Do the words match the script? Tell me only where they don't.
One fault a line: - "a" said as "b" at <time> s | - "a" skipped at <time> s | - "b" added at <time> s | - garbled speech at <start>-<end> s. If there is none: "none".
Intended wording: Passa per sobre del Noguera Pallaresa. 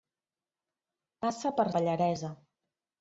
- "sobre del Noguera" skipped at 1.7 s